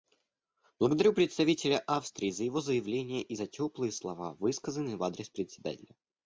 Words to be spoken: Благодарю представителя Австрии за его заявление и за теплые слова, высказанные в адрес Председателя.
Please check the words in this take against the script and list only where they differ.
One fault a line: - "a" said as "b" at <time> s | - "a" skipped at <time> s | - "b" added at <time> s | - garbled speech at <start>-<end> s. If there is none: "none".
none